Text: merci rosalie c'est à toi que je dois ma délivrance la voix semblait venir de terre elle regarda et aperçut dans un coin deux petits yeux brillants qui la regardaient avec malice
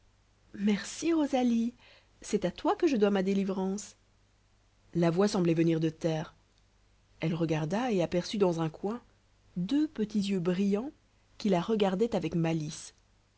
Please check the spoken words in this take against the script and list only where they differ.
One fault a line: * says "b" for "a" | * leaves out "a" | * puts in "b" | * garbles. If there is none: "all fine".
all fine